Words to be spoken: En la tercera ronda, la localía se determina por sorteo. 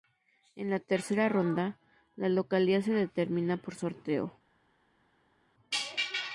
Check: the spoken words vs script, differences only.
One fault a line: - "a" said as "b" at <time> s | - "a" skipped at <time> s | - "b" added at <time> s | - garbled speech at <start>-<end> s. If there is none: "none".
none